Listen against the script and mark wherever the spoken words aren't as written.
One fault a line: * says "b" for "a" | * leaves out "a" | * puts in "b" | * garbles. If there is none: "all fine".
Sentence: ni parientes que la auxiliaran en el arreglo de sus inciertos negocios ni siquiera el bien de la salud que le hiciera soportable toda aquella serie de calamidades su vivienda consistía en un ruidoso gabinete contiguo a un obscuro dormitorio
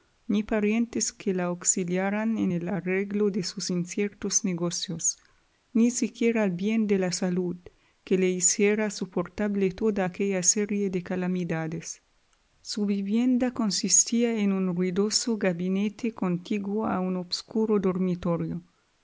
all fine